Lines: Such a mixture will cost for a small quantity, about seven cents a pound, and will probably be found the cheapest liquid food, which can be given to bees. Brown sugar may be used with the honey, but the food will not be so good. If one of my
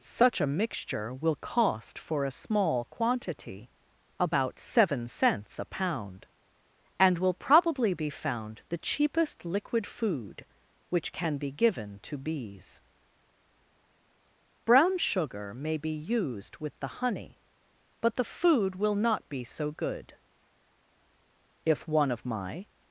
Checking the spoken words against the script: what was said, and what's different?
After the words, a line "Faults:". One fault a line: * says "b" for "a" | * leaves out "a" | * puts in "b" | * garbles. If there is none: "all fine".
Such a mixture will cost for a small quantity, about seven cents a pound, and will probably be found the cheapest liquid food, which can be given to bees. Brown sugar may be used with the honey, but the food will not be so good. If one of my
Faults:
all fine